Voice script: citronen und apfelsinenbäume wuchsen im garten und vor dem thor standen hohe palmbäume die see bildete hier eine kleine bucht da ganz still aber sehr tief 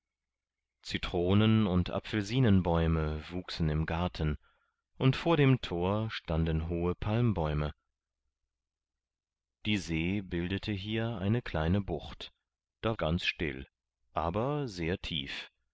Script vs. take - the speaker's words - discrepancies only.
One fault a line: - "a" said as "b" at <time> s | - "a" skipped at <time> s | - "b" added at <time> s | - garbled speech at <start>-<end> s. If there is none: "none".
none